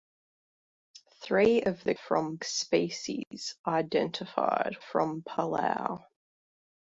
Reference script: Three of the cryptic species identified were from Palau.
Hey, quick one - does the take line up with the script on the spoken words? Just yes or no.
no